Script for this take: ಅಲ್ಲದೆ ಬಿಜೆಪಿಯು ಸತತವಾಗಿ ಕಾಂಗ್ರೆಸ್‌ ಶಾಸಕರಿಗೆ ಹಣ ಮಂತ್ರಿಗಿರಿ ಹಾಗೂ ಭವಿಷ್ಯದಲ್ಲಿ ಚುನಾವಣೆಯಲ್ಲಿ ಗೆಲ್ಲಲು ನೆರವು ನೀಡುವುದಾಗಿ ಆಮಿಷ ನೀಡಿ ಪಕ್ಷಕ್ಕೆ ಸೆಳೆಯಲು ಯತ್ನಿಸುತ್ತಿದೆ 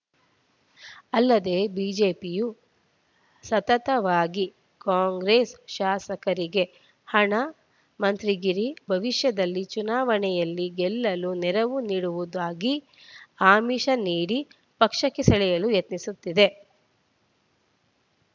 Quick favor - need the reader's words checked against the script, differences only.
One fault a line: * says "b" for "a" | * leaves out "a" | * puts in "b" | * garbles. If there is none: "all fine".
* leaves out "ಹಾಗೂ"